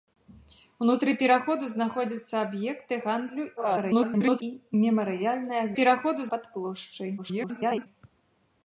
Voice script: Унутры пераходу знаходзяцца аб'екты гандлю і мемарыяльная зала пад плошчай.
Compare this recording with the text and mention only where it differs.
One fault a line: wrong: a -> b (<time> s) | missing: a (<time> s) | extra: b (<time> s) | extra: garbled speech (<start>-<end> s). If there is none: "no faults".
extra: garbled speech (3.6-4.4 s)
wrong: зала -> пераходу (5.8 s)
extra: garbled speech (7.2-7.9 s)